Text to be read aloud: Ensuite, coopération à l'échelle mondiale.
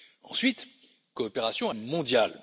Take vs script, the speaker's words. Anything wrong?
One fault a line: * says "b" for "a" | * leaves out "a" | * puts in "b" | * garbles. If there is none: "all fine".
* leaves out "l'échelle"